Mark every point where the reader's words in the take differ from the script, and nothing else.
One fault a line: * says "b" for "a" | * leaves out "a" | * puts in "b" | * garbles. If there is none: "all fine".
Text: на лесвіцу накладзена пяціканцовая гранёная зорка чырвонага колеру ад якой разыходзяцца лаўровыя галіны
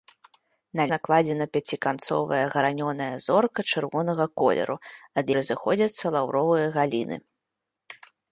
* leaves out "лесвіцу"
* leaves out "якой"